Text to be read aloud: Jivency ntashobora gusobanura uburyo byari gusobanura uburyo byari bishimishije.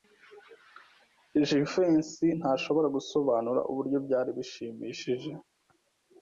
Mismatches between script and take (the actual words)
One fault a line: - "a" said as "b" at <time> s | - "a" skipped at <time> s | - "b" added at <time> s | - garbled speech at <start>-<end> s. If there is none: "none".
- "gusobanura uburyo byari" skipped at 4.3 s